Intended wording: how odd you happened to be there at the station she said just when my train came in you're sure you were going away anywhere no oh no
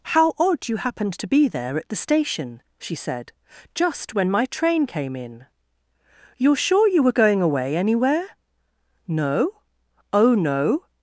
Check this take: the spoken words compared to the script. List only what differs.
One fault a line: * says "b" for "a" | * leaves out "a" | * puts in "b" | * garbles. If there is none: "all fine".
all fine